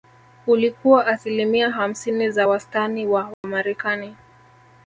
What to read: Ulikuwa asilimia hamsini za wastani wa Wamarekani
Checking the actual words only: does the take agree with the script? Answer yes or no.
yes